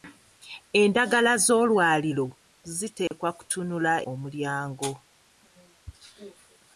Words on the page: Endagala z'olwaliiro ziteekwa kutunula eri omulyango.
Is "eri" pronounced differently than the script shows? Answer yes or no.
yes